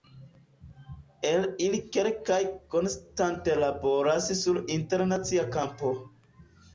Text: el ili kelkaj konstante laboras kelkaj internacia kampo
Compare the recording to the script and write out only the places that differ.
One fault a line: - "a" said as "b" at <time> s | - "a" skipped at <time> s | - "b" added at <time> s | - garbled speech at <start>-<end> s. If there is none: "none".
- "kelkaj" said as "sur" at 4.4 s